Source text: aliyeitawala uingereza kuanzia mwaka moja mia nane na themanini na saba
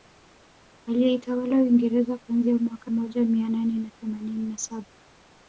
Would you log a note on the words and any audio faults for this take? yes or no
no